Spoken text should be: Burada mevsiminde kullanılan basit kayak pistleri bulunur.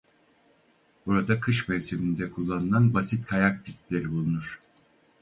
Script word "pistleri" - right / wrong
right